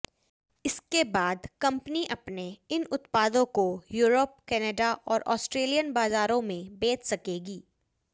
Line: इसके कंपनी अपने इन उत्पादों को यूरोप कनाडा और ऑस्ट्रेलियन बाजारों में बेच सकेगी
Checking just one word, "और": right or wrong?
right